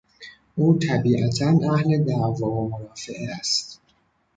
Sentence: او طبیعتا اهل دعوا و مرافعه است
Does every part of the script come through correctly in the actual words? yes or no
yes